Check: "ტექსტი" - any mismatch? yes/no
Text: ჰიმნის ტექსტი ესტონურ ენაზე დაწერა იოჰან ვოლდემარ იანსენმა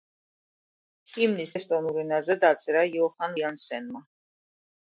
yes